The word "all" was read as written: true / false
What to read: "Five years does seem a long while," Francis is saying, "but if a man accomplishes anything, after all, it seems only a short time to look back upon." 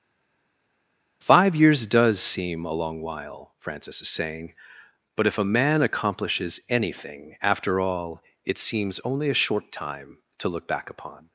true